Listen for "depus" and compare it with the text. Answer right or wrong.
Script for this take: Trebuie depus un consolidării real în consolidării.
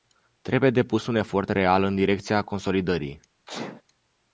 right